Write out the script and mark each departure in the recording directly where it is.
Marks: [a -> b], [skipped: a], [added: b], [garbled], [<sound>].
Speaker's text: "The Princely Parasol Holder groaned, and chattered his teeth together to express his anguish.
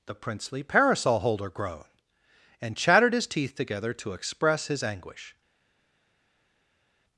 "The Princely Parasol Holder groaned, and chattered his teeth together to express his anguish.